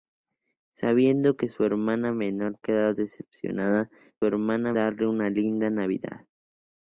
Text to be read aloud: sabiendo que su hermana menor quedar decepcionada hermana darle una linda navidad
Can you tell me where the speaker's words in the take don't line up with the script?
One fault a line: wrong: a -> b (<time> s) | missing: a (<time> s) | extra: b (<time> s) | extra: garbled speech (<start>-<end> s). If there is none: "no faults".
no faults